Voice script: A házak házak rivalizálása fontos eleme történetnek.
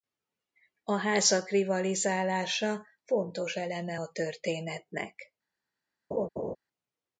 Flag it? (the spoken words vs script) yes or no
yes